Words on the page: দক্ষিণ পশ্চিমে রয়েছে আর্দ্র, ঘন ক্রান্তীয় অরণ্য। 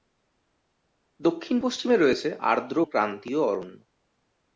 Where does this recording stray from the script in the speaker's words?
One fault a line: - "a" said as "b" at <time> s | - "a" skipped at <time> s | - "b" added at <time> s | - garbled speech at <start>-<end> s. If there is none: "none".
- "ঘন" skipped at 2.8 s